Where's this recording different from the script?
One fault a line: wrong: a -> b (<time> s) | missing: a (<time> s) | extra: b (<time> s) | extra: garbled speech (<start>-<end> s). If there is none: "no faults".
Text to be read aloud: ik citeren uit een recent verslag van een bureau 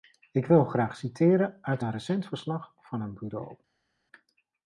extra: wil graag (0.5 s)